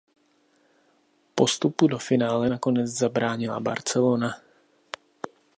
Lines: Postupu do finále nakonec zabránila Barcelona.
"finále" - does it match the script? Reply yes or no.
yes